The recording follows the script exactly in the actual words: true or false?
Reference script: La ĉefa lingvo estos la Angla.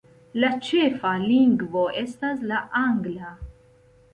false